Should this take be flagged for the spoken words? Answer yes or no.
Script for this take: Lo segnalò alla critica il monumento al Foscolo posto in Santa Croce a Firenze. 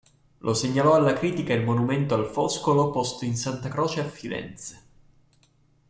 no